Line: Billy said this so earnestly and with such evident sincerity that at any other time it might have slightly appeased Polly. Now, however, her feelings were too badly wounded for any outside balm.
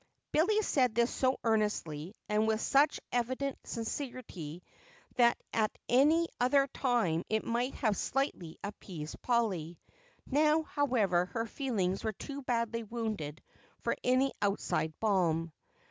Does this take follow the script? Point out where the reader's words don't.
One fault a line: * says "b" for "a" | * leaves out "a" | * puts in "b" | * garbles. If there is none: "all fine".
all fine